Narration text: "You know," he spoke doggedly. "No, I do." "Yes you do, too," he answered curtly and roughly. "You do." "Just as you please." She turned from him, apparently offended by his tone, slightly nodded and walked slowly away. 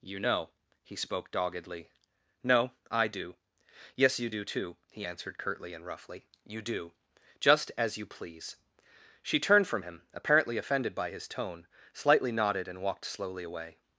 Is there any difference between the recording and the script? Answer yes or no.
no